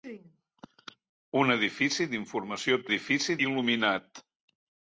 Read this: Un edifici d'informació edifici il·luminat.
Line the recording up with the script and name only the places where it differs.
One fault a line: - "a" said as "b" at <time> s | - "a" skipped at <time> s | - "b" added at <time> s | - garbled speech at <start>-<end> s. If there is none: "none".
none